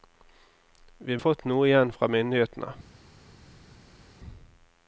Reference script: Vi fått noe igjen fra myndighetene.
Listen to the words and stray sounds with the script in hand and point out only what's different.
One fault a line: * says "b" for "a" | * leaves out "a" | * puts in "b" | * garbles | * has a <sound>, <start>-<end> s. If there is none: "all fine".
all fine